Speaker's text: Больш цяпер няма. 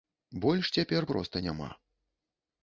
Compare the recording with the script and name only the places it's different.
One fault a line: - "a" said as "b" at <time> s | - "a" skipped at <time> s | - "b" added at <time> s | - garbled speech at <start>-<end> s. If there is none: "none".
- "проста" added at 1.1 s